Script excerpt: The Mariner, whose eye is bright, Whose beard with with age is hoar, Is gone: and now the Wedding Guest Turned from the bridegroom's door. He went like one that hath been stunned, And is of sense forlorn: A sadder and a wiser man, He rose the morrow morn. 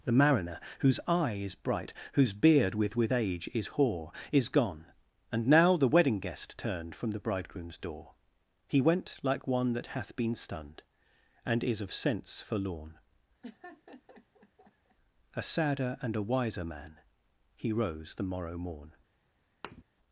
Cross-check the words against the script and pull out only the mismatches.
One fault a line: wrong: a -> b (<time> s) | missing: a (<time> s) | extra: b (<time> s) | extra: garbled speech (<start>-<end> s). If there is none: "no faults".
no faults